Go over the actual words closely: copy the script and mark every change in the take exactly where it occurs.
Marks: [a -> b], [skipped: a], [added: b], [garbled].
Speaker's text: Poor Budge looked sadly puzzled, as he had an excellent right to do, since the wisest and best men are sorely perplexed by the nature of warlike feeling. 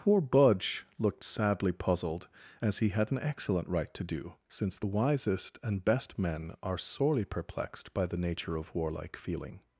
Poor Budge looked sadly puzzled, as he had an excellent right to do, since the wisest and best men are sorely perplexed by the nature of warlike feeling.